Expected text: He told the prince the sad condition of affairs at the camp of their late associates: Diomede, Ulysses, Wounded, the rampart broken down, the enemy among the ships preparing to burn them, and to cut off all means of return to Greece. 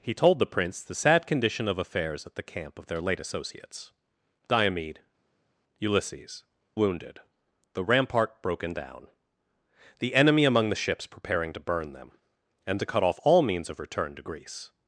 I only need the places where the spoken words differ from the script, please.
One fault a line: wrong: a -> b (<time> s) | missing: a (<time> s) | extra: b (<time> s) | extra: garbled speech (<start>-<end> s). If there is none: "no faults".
no faults